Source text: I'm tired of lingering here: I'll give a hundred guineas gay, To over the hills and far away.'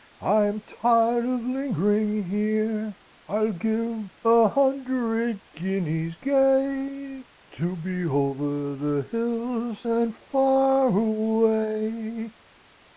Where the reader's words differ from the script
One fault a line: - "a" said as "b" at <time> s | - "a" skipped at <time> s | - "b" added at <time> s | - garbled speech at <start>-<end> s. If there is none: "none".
- "be" added at 7.8 s